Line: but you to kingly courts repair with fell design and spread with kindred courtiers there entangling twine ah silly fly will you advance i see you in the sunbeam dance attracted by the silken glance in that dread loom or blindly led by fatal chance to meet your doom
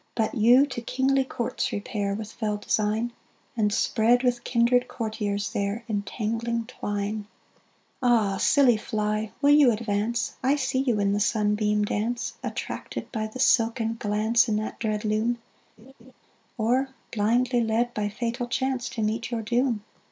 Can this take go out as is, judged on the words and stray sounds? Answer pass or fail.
fail